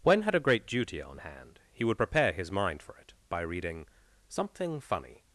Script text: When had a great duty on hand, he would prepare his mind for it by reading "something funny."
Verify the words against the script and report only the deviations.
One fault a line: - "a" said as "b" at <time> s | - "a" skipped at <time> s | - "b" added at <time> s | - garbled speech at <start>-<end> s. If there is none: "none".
none